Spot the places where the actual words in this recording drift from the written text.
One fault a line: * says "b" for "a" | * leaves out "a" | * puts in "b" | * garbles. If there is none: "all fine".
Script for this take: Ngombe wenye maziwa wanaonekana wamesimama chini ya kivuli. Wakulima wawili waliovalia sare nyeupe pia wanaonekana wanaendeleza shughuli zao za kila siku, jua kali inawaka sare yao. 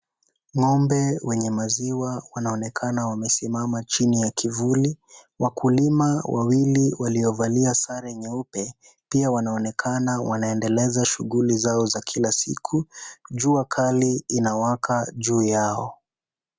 * says "juu" for "sare"